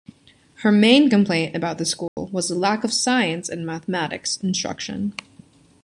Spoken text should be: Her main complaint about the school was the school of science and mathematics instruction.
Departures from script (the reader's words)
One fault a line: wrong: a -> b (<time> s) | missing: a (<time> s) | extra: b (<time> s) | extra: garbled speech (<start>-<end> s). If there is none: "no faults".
wrong: school -> lack (2.5 s)